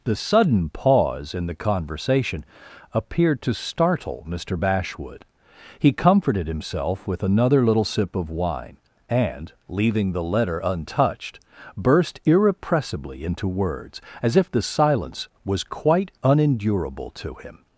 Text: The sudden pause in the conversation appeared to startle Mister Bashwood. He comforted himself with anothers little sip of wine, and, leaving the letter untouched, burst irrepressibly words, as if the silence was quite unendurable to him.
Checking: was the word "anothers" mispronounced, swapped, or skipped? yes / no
yes